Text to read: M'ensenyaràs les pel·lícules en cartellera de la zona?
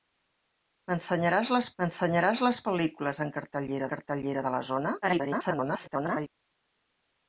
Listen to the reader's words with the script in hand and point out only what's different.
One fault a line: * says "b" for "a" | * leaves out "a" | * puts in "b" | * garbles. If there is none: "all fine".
* puts in "m'ensenyaràs les"
* puts in "cartellera"
* garbles